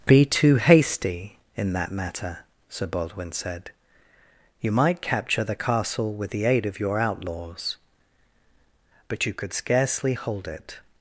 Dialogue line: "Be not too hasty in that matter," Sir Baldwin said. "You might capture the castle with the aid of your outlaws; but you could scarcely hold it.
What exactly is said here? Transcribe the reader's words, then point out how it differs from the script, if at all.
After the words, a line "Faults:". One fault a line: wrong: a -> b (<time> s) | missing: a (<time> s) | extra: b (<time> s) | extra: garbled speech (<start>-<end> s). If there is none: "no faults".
"Be too hasty in that matter," Sir Baldwin said. "You might capture the castle with the aid of your outlaws; but you could scarcely hold it.
Faults:
missing: not (0.3 s)